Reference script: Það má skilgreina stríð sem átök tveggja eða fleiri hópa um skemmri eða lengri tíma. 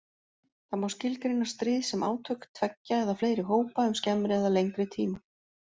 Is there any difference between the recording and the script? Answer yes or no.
no